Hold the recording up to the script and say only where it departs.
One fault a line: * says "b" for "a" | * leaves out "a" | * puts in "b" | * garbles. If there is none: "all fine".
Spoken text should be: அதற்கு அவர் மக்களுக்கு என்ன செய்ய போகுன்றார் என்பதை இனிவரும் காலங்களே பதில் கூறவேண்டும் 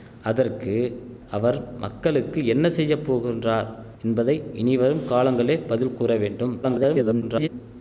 * garbles